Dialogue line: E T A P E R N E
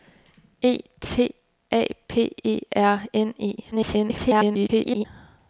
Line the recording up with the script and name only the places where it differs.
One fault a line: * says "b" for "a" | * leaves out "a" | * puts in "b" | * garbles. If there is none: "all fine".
* garbles